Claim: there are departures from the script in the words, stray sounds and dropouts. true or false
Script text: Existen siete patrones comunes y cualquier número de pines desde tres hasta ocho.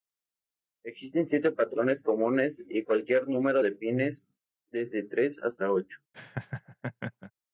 true